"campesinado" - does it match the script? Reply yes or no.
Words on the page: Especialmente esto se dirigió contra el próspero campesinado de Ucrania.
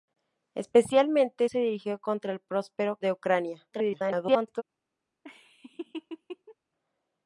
no